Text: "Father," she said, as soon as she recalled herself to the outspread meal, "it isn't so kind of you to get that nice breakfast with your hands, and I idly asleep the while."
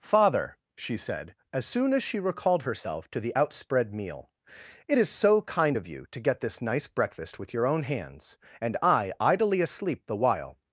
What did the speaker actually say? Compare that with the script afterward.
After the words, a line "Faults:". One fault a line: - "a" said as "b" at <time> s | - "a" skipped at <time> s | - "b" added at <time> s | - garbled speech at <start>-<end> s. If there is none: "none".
"Father," she said, as soon as she recalled herself to the outspread meal, "it is so kind of you to get this nice breakfast with your own hands, and I idly asleep the while."
Faults:
- "isn't" said as "is" at 5.0 s
- "that" said as "this" at 6.4 s
- "own" added at 7.7 s